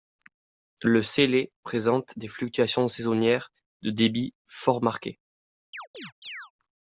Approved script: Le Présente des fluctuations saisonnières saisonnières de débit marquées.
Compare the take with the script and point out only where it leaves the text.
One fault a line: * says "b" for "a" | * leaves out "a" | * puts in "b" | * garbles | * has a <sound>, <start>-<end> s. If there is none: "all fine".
* puts in "Célé"
* leaves out "saisonnières"
* puts in "fort"
* has a chirp, 5.7-6.5 s